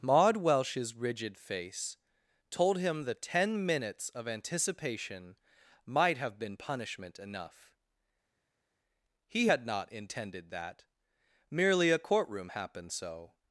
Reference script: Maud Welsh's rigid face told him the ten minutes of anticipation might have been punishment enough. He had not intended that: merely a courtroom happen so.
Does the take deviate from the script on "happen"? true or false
true